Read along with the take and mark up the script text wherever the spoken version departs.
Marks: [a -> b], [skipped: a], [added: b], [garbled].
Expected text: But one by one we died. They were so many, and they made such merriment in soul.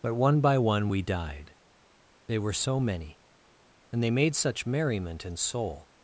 But one by one we died. They were so many, and they made such merriment in soul.